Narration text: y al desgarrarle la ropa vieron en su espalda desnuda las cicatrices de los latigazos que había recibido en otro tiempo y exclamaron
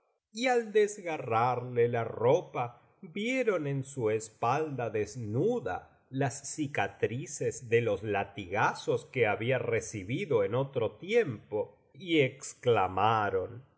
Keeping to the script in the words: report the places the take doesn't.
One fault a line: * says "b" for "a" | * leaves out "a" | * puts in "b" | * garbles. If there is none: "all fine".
all fine